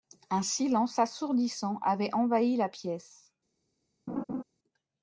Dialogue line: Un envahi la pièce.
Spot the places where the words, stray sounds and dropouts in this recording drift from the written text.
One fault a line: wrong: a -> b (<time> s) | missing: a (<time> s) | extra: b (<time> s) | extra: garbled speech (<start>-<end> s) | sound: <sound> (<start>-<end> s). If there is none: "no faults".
extra: silence assourdissant avait (0.4 s)
sound: laugh (4.1-4.4 s)